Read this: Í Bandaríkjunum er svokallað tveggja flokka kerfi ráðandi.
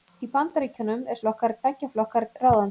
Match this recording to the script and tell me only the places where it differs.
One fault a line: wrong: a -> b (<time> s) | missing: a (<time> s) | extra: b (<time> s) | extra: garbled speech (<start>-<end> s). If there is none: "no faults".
wrong: svokallað -> flokka (1.2 s)
missing: kerfi (2.2 s)